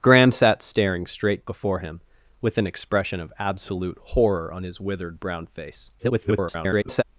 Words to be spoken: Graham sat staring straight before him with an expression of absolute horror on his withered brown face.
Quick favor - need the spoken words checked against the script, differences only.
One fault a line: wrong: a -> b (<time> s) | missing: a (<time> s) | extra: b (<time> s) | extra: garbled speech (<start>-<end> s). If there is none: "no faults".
extra: garbled speech (6.0-7.0 s)